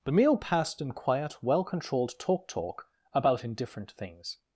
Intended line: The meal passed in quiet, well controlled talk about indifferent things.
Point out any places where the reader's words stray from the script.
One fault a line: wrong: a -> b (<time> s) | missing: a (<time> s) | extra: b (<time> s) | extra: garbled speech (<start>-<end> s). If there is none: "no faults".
extra: talk (2.5 s)